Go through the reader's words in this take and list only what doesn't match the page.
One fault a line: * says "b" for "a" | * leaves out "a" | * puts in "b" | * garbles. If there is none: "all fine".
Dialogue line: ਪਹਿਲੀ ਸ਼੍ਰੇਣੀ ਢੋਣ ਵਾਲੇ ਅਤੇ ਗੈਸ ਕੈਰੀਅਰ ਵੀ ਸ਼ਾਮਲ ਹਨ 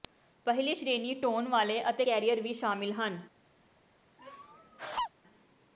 * leaves out "ਗੈਸ"